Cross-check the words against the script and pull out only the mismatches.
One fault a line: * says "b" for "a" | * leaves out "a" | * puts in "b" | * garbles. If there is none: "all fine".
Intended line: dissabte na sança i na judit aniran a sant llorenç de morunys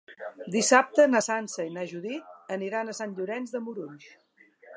all fine